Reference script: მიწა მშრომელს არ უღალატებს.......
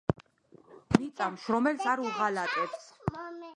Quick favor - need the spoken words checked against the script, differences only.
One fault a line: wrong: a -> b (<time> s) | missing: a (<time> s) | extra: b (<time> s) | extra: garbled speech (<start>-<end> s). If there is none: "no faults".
no faults